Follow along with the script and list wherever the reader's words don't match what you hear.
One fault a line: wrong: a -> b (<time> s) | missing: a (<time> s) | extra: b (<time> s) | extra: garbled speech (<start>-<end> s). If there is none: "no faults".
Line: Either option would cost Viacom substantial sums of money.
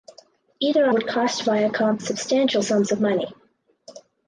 missing: option (0.9 s)